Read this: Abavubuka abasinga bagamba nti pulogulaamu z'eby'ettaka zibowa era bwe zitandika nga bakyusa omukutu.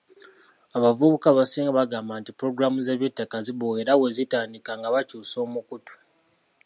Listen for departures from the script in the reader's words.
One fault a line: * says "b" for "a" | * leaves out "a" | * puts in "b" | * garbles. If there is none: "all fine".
all fine